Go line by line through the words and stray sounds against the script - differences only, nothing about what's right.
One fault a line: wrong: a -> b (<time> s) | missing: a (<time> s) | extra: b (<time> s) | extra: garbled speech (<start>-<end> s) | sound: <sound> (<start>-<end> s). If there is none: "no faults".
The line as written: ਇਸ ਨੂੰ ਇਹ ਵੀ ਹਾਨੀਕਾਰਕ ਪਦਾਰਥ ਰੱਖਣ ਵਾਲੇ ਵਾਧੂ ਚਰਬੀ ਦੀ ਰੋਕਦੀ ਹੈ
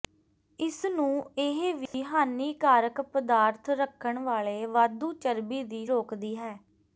sound: dropout (1.9-1.9 s)